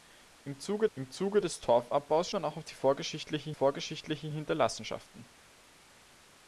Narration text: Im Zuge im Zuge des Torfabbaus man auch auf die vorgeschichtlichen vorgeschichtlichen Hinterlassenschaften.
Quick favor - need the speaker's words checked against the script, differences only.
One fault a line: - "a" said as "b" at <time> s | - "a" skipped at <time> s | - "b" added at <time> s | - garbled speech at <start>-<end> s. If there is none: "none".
none